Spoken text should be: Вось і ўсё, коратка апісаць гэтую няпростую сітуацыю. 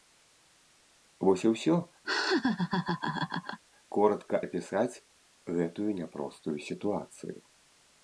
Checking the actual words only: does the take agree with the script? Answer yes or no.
yes